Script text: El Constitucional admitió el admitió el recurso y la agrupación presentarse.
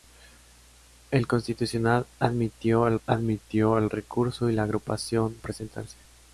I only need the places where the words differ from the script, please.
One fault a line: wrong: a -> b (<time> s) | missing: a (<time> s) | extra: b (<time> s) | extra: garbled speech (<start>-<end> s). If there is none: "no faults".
no faults